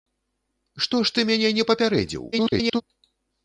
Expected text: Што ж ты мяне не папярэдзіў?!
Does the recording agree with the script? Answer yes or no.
no